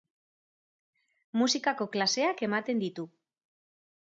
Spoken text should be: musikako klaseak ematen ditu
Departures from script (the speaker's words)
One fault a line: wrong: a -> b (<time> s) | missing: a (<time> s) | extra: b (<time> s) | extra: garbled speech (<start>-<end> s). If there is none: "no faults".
no faults